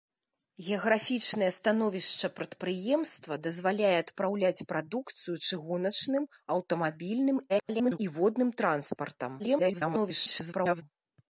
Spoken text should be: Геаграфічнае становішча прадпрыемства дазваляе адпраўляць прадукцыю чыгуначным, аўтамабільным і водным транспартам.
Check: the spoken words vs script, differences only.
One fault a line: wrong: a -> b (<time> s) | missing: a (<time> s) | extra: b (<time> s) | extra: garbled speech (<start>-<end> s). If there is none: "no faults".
extra: garbled speech (7.5-8.0 s)
extra: garbled speech (9.4-10.8 s)